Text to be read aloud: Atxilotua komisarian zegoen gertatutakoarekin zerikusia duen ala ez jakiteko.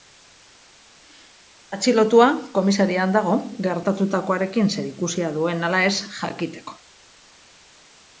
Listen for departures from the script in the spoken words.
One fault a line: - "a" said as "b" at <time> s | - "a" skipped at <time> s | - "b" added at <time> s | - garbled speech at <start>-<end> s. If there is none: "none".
- "zegoen" said as "dago" at 3.2 s